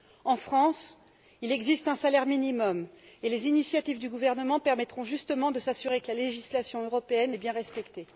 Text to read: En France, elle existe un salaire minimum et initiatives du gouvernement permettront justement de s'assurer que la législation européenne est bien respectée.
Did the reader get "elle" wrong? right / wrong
wrong